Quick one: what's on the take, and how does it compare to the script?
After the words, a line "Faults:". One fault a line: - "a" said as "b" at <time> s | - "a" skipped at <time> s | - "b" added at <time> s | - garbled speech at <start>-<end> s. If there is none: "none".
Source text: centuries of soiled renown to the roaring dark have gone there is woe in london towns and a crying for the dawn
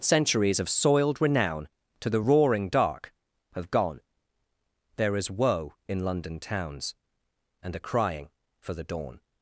centuries of soiled renown to the roaring dark have gone there is woe in london towns and a crying for the dawn
Faults:
none